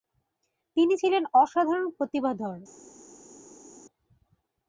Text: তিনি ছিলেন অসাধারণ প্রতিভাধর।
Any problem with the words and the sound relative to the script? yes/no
no